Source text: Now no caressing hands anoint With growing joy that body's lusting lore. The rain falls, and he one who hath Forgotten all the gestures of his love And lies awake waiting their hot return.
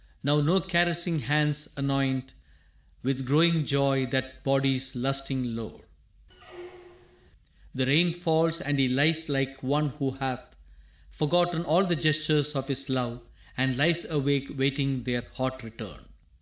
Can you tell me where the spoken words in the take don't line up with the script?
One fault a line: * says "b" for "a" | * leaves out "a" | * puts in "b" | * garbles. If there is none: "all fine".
* puts in "lies like"